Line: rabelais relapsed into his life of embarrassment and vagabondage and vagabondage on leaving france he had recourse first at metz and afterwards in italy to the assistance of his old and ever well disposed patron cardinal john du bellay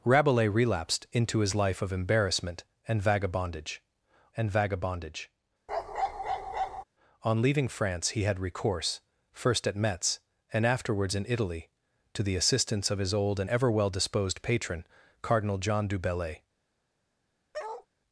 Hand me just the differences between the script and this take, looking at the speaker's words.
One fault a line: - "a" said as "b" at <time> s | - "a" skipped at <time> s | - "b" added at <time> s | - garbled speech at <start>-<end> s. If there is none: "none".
none